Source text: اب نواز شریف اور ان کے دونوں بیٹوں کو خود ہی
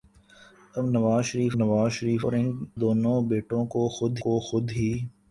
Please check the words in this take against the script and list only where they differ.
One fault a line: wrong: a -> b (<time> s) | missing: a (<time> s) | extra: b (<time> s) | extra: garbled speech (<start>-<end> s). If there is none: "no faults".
extra: نواز شریف (1.6 s)
missing: کے (2.5 s)
extra: کو خود (4.2 s)